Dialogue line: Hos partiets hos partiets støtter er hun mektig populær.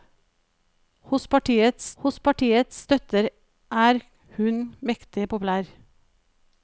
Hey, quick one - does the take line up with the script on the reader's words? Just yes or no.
yes